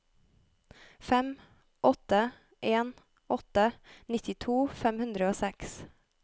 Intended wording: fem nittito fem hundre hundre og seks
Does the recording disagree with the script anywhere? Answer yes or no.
yes